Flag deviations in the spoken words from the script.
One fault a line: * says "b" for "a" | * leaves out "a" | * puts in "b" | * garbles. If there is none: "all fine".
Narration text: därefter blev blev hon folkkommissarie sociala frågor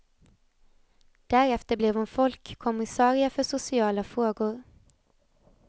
* leaves out "blev"
* puts in "för"